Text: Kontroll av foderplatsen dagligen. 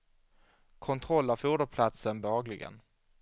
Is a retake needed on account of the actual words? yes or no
no